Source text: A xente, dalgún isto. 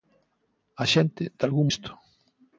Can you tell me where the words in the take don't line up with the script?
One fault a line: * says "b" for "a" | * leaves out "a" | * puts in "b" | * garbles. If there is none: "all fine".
all fine